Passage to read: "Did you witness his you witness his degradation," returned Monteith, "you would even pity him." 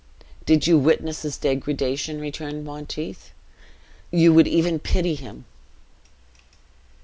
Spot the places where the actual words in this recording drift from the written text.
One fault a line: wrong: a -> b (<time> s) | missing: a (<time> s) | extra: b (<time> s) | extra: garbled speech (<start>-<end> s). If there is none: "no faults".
missing: you witness his (1.4 s)